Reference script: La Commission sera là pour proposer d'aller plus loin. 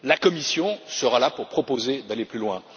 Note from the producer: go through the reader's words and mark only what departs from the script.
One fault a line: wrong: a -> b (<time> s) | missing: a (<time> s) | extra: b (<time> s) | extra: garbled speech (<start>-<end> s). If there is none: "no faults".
no faults